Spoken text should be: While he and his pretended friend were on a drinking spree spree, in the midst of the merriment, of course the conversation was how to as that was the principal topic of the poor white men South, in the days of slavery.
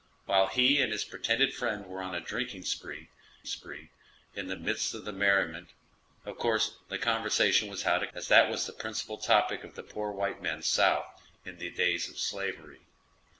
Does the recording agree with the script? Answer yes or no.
yes